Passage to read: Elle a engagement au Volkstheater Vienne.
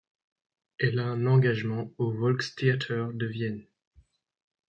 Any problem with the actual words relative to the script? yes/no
yes